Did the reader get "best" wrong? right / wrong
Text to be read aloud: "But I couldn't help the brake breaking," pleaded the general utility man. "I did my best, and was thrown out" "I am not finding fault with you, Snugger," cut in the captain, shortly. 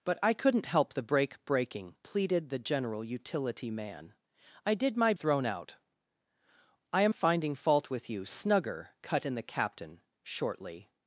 wrong